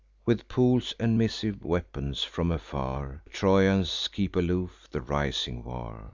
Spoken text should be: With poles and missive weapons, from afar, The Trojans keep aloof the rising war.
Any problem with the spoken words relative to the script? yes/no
yes